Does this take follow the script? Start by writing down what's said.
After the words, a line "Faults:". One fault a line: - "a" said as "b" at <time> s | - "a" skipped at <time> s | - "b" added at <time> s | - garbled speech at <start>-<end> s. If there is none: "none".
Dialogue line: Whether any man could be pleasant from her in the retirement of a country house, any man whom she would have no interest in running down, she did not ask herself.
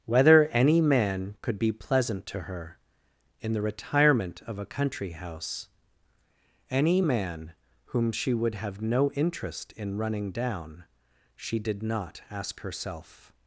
Whether any man could be pleasant to her in the retirement of a country house, any man whom she would have no interest in running down, she did not ask herself.
Faults:
- "from" said as "to" at 2.3 s